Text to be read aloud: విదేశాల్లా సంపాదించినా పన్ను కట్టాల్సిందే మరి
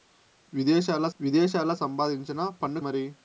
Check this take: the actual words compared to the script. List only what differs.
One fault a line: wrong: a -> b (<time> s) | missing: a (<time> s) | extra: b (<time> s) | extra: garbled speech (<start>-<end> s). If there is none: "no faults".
extra: విదేశాల్లా (1.2 s)
missing: కట్టాల్సిందే (2.8 s)